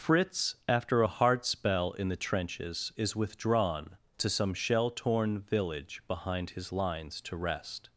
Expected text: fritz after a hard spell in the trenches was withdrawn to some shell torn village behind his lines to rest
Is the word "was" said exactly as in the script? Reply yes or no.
no